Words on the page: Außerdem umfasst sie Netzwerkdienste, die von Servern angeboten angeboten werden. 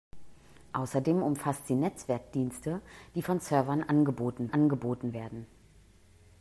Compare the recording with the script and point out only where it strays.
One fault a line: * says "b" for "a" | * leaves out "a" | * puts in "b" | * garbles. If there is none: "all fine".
all fine